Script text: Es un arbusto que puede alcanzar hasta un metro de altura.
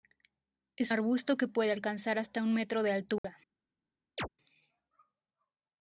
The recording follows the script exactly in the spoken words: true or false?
false